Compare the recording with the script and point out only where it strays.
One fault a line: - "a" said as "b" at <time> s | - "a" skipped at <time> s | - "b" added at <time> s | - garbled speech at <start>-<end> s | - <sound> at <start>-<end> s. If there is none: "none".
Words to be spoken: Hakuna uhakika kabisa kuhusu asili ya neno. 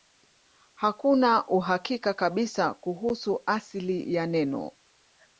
none